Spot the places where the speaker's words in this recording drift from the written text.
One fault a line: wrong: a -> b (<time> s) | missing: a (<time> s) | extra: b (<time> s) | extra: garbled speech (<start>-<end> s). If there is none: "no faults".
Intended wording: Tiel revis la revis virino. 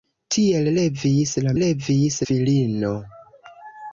no faults